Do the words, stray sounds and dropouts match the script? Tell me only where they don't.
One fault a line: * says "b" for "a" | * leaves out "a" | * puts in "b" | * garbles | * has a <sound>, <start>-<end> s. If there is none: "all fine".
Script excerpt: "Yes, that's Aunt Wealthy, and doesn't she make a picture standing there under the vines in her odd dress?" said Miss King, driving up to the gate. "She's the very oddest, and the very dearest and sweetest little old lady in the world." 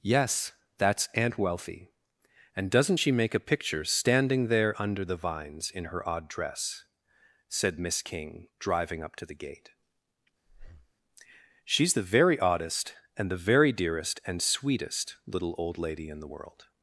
* has a breath, 10.5-10.9 s